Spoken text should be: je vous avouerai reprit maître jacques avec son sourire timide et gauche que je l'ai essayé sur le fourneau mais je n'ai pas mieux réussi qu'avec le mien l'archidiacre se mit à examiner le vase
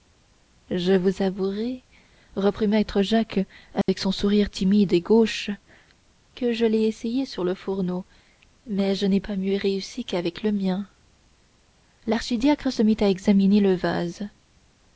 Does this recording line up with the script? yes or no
yes